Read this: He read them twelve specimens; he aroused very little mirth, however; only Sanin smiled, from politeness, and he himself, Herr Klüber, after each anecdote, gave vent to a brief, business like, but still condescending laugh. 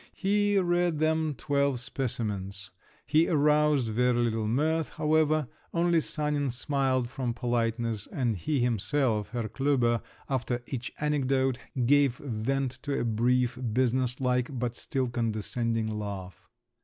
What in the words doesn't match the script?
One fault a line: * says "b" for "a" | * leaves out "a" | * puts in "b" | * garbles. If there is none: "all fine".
all fine